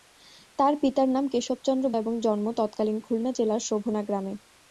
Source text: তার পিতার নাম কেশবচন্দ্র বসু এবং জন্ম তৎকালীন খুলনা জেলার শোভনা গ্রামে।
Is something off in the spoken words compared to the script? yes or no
yes